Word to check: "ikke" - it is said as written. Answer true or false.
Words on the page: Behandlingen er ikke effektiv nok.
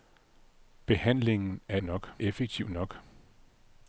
false